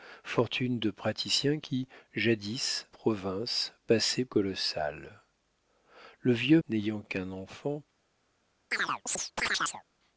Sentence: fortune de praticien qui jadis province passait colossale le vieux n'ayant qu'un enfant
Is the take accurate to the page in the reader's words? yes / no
yes